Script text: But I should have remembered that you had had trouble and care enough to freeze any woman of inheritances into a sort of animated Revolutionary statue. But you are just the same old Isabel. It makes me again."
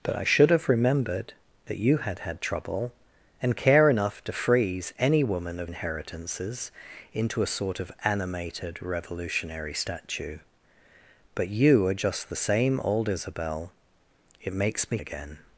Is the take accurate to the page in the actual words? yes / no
yes